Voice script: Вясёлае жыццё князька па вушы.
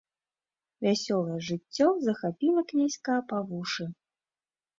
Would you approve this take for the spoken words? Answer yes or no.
no